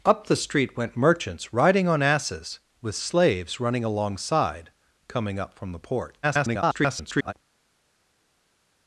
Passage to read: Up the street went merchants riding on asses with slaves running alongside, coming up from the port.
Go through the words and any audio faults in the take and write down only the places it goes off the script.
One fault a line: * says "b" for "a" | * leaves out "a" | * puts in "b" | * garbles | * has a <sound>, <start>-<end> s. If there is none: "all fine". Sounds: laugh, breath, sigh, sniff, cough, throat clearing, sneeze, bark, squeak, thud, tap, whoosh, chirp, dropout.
* garbles